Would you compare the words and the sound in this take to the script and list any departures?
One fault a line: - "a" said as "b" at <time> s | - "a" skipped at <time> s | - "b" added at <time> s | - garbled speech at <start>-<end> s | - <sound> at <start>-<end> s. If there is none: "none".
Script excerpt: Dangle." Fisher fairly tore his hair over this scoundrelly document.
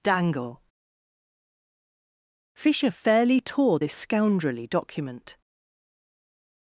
- "his hair over" skipped at 3.8 s